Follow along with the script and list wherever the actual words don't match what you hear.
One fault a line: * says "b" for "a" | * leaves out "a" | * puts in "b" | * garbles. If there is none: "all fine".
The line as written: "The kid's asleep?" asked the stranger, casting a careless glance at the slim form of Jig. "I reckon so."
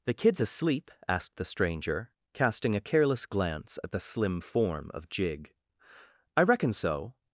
all fine